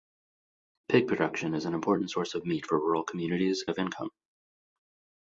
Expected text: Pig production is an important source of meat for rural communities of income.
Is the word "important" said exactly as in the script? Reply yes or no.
yes